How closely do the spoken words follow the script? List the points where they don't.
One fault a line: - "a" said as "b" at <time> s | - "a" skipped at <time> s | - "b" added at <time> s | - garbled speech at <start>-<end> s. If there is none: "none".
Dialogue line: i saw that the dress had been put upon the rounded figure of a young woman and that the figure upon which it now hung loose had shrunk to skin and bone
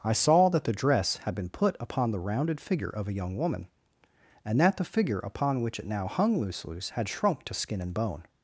- "loose" added at 6.7 s